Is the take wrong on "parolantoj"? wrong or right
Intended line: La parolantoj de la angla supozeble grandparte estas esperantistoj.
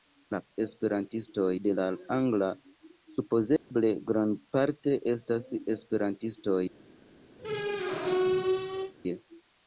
wrong